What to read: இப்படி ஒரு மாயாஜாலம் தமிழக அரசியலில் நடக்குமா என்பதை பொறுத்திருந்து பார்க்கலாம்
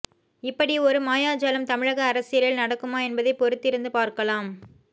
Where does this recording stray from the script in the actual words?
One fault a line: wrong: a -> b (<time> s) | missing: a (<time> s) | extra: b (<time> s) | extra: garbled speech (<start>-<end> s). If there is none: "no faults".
no faults